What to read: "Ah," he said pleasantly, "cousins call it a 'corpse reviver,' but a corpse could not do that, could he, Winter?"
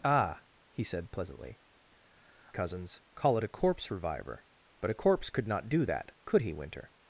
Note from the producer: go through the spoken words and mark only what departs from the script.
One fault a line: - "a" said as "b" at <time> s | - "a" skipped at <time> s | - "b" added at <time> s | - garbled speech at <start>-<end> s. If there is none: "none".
none